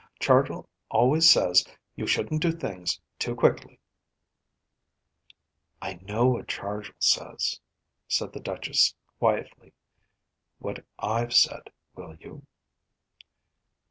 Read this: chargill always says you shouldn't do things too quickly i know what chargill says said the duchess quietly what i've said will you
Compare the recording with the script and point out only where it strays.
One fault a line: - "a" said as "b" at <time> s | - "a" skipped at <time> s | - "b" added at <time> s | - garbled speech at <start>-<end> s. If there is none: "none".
none